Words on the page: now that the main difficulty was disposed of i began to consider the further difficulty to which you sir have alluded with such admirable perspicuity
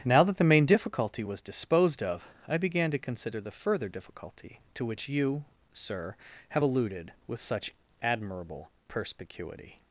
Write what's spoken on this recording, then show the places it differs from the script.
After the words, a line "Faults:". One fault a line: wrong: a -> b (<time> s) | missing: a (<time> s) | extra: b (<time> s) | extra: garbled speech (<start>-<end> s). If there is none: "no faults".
now that the main difficulty was disposed of i began to consider the further difficulty to which you sir have alluded with such admirable perspicuity
Faults:
no faults